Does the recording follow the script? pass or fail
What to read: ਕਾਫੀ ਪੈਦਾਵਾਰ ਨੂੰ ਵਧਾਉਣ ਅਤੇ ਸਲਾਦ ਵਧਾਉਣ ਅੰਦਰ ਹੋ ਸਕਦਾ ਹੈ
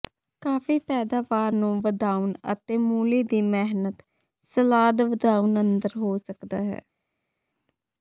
fail